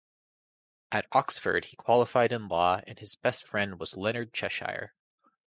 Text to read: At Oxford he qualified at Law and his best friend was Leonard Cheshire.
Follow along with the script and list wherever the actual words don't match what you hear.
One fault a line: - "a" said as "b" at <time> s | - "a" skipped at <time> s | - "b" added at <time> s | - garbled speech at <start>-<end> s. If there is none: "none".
- "at" said as "in" at 2.3 s